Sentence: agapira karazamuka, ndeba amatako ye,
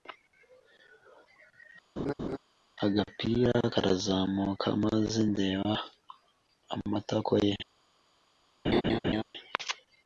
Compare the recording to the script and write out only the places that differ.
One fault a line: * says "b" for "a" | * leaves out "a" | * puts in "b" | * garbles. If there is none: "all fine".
* puts in "maze"